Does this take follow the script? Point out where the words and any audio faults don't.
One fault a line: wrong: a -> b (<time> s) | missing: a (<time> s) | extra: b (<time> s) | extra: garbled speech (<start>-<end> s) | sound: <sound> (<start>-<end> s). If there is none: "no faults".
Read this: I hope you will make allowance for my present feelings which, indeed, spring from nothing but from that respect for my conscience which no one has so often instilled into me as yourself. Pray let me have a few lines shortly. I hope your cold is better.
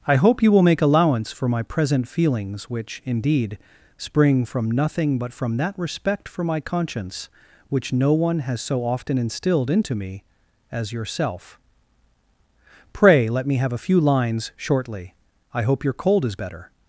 no faults